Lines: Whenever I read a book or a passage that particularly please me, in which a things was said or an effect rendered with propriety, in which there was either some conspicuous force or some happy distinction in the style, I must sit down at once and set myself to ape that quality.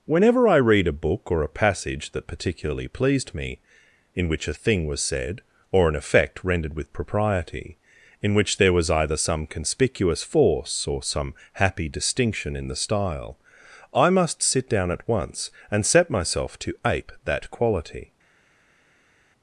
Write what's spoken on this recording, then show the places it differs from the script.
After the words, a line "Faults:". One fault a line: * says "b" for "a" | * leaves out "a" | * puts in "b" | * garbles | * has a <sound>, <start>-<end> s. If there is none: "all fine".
Whenever I read a book or a passage that particularly pleased me, in which a thing was said or an effect rendered with propriety, in which there was either some conspicuous force or some happy distinction in the style, I must sit down at once and set myself to ape that quality.
Faults:
* says "pleased" for "please"
* says "thing" for "things"